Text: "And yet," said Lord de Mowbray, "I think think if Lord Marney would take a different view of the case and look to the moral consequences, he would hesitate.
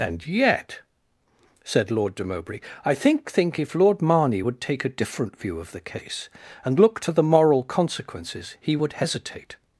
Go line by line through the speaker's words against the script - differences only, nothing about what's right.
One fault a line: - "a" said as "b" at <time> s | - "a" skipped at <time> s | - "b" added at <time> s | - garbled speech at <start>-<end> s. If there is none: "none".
none